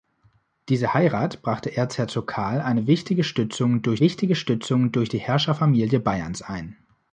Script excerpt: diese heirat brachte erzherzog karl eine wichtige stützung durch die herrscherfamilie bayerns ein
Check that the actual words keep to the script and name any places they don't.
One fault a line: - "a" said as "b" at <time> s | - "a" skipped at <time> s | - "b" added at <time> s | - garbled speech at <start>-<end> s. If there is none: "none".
- "wichtige stützung durch" added at 4.0 s